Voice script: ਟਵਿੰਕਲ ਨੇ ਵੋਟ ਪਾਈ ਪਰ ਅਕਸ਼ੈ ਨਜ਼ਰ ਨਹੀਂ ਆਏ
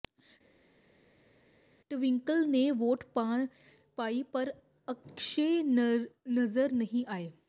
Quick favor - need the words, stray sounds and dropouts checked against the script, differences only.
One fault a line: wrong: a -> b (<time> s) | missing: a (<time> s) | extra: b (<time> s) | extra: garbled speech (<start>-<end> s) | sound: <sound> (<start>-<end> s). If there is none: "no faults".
no faults